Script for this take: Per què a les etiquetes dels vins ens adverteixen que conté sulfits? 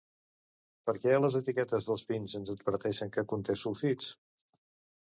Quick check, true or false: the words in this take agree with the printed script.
true